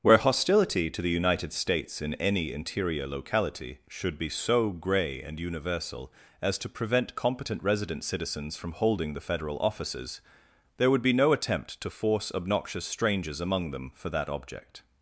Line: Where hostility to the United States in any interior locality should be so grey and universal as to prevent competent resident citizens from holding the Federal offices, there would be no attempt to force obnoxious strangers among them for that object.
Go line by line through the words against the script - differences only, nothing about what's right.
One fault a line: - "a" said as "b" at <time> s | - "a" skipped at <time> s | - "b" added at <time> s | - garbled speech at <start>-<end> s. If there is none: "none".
none